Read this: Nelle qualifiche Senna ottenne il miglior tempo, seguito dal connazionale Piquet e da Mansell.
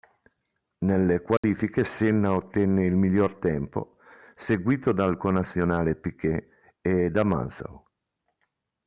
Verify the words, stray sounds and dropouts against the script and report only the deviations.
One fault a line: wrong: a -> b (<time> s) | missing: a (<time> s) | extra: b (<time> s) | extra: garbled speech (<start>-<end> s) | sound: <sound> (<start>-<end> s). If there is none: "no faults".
sound: dropout (1.4-1.4 s)